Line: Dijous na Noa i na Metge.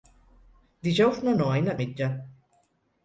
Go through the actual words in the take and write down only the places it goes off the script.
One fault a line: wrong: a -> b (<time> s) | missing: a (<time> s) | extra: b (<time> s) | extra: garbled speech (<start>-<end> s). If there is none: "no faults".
no faults